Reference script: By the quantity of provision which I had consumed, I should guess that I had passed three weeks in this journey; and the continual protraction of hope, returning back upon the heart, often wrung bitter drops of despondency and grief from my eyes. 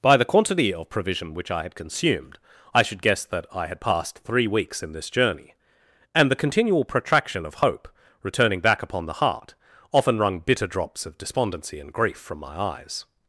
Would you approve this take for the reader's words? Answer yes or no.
yes